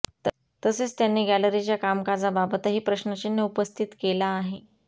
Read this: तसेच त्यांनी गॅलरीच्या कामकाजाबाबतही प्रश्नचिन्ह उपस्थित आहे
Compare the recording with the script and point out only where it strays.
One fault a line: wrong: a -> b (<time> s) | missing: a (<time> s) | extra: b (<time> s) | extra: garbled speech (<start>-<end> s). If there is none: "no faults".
extra: केला (4.0 s)